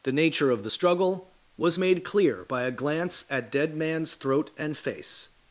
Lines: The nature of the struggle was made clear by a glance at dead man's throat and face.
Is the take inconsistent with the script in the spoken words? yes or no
no